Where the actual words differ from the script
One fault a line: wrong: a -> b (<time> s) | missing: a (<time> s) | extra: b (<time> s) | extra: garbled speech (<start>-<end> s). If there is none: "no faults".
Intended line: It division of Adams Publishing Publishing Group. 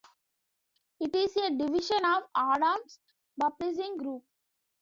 extra: is a (1.1 s)
missing: Publishing (4.0 s)